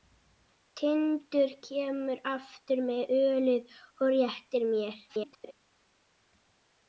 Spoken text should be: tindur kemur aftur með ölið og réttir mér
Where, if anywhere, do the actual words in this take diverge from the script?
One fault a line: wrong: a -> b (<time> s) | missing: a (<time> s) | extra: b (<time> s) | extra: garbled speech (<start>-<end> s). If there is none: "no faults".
extra: garbled speech (5.1-5.5 s)